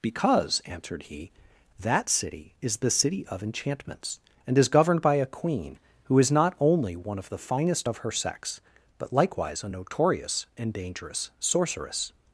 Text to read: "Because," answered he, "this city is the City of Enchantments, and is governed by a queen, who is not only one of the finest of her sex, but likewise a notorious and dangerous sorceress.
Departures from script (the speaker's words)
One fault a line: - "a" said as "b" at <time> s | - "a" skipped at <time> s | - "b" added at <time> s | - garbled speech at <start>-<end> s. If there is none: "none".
- "this" said as "that" at 1.8 s